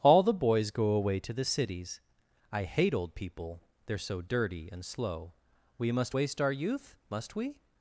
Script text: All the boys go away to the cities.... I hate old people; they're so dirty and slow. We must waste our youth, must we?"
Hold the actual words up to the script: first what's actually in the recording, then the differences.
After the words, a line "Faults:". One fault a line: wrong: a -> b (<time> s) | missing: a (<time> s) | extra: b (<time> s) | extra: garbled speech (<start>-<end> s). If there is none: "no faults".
All the boys go away to the cities.... I hate old people; they're so dirty and slow. We must waste our youth, must we?"
Faults:
no faults